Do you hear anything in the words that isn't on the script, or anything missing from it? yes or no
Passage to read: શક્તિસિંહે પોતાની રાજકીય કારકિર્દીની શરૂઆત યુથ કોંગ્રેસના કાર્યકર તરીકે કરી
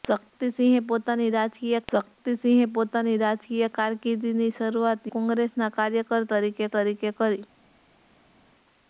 yes